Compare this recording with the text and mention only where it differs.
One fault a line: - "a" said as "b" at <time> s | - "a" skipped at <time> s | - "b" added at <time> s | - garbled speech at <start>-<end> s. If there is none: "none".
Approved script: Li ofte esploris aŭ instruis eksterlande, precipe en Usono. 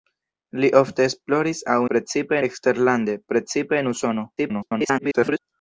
- "instruis" said as "precipe" at 1.9 s
- garbled speech at 4.4-5.4 s